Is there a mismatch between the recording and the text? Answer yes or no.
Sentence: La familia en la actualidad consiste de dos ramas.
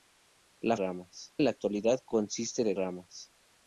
yes